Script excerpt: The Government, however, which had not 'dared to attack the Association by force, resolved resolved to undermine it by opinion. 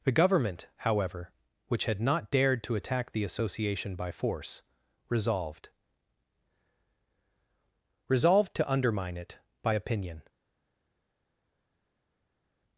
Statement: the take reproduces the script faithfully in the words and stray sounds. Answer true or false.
true